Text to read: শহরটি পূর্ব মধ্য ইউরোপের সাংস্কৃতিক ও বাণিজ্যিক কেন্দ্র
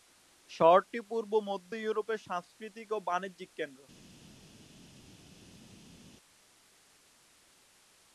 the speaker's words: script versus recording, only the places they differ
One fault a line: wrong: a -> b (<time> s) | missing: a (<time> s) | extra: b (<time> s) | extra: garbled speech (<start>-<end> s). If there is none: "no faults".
no faults